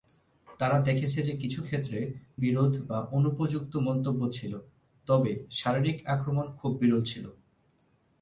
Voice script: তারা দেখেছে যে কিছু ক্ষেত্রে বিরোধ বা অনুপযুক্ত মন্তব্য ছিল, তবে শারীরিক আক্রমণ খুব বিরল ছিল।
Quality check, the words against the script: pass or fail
pass